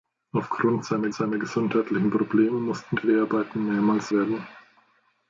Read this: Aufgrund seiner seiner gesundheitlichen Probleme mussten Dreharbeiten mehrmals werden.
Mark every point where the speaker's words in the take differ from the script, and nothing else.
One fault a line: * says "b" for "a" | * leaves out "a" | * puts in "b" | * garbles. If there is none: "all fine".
all fine